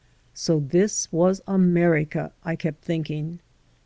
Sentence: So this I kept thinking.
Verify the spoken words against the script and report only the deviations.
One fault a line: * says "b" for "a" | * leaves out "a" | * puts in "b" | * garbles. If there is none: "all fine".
* puts in "was America"